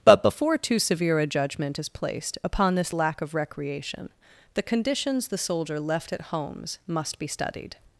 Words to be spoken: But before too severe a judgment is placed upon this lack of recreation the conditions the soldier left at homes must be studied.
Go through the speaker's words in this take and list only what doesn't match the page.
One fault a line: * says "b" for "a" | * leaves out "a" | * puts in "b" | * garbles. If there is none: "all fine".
all fine